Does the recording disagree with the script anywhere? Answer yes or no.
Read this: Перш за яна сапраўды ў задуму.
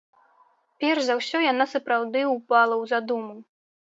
yes